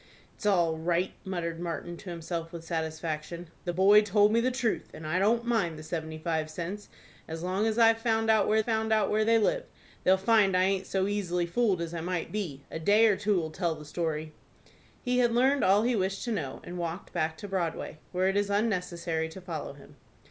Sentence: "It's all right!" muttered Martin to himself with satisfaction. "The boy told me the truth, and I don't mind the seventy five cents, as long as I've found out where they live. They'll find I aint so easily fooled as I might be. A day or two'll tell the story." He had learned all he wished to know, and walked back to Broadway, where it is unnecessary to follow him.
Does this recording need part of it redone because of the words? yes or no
yes